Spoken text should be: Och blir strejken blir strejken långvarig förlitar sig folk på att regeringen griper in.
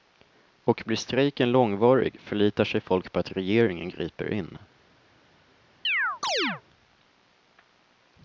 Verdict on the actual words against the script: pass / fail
fail